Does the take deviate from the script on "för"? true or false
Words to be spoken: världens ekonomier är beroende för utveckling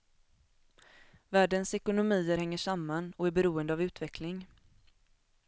true